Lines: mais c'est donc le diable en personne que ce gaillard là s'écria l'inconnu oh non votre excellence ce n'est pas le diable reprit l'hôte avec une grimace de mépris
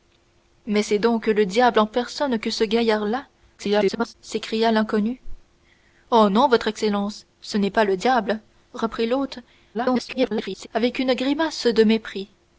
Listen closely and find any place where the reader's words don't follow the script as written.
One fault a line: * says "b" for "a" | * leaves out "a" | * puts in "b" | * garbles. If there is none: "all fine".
* garbles
* garbles